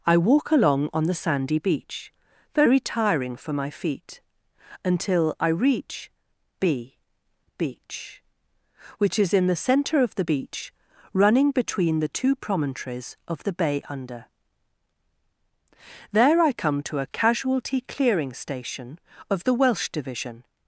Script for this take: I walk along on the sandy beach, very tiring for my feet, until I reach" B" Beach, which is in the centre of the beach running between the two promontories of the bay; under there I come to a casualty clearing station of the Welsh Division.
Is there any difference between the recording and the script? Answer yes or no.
no